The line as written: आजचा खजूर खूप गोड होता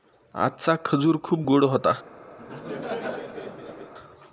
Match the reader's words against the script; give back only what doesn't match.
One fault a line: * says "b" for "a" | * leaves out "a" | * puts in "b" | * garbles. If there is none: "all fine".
all fine